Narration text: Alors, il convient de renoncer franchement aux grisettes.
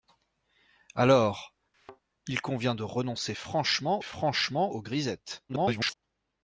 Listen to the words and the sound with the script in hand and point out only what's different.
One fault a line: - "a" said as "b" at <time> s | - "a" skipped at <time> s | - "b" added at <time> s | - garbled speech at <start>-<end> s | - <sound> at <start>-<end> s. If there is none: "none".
- thud at 1.7-2.0 s
- "franchement" added at 4.0 s
- garbled speech at 5.5-6.0 s